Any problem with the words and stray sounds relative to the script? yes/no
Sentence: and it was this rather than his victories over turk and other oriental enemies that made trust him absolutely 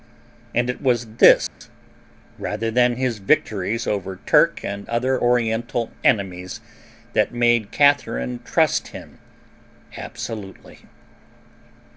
yes